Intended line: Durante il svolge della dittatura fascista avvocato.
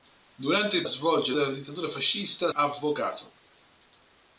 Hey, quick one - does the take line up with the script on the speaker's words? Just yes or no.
yes